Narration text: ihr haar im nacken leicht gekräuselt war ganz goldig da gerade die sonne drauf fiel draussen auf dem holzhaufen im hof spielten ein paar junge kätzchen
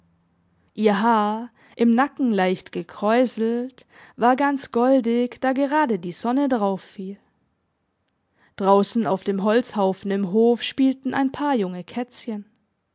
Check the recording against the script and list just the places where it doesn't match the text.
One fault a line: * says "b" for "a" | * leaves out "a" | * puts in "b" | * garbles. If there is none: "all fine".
all fine